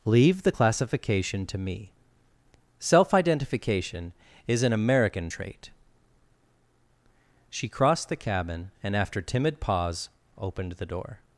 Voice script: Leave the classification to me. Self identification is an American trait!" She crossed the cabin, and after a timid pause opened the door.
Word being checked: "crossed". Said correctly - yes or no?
yes